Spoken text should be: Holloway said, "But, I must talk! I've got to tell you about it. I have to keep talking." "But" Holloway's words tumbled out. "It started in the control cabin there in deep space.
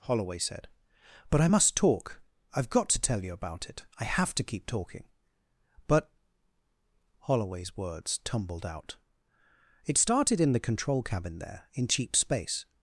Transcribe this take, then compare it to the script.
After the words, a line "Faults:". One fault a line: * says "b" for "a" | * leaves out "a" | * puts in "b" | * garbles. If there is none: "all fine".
Holloway said, "But, I must talk! I've got to tell you about it. I have to keep talking." "But" Holloway's words tumbled out. "It started in the control cabin there in cheap space.
Faults:
* says "cheap" for "deep"